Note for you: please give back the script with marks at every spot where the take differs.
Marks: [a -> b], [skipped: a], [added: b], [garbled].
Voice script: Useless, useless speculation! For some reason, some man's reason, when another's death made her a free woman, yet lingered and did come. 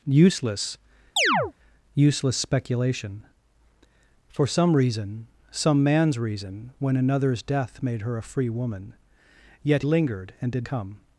Useless, useless speculation! For some reason, some man's reason, when another's death made her a free woman, yet lingered and did come.